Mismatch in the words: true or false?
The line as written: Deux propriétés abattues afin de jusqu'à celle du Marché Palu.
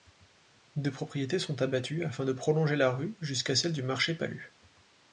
true